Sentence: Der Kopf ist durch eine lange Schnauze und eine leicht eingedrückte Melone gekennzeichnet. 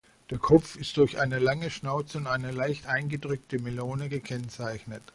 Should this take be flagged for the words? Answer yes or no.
no